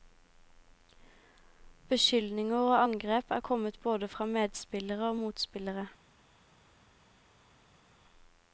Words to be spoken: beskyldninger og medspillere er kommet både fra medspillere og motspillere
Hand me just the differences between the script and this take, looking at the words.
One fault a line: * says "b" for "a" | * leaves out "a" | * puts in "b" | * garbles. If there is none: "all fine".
* says "angrep" for "medspillere"